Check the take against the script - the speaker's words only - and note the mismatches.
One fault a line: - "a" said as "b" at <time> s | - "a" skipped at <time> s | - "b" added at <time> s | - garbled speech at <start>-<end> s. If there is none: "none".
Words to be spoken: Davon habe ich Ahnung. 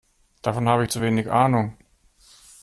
- "zu wenig" added at 0.9 s